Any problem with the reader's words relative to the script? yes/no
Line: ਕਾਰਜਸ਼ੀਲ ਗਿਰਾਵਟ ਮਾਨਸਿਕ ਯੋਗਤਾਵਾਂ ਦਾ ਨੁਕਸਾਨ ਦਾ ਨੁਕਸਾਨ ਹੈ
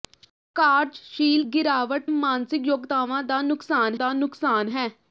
no